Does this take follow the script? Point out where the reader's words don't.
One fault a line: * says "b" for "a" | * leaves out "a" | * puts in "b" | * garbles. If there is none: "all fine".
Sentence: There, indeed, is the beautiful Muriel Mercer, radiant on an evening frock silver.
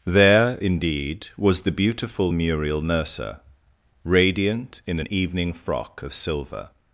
* says "was" for "is"
* says "in" for "on"
* puts in "of"